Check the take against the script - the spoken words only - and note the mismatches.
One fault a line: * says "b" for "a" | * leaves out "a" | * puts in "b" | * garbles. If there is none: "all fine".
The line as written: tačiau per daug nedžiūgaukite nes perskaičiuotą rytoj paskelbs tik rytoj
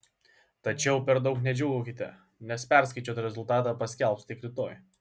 * says "rezultatą" for "rytoj"